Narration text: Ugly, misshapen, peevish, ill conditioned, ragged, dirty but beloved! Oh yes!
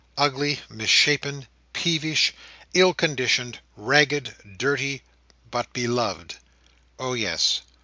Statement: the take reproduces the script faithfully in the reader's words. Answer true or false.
true